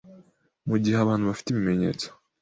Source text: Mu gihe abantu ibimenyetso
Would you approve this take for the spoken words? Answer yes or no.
no